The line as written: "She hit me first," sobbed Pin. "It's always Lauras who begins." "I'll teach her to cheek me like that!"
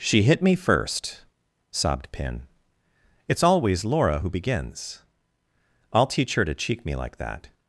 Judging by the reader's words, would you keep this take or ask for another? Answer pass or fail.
fail